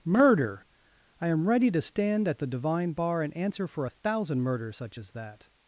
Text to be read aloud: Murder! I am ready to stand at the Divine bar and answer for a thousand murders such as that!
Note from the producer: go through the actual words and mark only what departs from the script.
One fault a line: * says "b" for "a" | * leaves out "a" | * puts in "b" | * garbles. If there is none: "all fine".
all fine